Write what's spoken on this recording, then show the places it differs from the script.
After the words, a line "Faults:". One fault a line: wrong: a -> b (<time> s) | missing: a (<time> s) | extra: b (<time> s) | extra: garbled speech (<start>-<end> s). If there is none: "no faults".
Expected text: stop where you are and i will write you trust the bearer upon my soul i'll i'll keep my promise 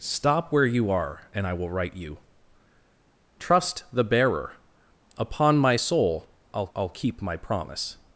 stop where you are and i will write you trust the bearer upon my soul i'll i'll keep my promise
Faults:
no faults